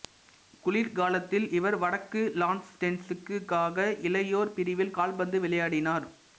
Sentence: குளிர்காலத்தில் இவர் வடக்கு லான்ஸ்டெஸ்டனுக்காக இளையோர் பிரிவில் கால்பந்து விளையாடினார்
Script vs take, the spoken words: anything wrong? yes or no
no